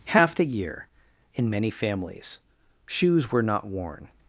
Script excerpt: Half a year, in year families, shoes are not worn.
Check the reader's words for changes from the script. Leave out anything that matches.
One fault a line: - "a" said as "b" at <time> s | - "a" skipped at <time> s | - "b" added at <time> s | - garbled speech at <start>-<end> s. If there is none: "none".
- "a" said as "the" at 0.3 s
- "year" said as "many" at 1.5 s
- "are" said as "were" at 3.3 s